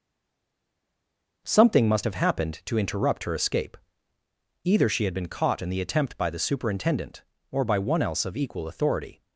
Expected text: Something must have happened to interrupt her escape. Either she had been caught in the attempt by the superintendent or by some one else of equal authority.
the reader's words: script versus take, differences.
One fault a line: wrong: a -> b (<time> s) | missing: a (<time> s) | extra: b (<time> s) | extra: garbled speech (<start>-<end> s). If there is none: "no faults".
missing: some (7.8 s)